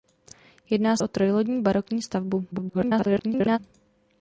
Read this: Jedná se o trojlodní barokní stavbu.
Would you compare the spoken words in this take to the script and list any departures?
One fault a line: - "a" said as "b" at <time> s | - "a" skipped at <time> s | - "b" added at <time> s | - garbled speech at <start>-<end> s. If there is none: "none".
- "se" skipped at 1.0 s
- garbled speech at 2.5-3.6 s